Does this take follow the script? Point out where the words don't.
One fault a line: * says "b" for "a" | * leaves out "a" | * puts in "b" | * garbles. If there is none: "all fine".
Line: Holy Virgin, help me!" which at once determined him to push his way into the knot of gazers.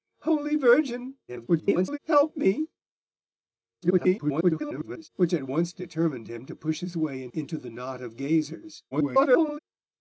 * garbles
* garbles
* garbles